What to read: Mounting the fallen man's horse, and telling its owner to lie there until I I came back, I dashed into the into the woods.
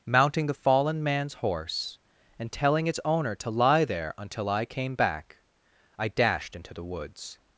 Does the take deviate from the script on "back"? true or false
false